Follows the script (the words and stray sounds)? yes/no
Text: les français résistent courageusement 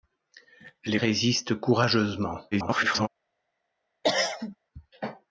no